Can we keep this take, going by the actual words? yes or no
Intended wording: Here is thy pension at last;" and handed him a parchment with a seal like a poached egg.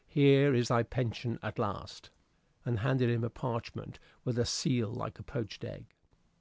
yes